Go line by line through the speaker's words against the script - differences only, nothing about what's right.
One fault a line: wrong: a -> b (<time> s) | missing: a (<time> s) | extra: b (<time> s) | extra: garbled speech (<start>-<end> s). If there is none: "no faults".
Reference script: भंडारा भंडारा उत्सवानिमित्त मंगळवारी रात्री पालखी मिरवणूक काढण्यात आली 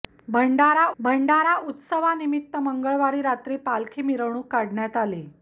no faults